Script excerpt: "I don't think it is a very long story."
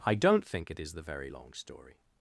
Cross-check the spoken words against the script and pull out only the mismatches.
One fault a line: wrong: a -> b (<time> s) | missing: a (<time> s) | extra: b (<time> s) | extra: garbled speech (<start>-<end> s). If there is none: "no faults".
wrong: a -> the (0.9 s)